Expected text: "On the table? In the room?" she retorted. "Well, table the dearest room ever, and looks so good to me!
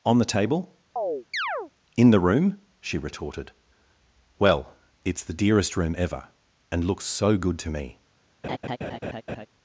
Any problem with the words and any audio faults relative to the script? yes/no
yes